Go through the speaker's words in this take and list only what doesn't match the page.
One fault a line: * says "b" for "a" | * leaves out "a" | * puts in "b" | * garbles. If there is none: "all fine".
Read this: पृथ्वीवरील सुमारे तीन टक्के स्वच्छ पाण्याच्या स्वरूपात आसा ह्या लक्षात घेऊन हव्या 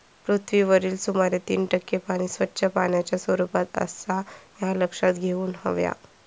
* puts in "पाणी"